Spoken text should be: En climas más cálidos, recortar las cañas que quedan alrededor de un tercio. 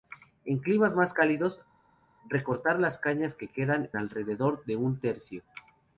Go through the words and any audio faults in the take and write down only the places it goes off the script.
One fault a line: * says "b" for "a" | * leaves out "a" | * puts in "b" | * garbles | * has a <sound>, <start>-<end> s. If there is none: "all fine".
all fine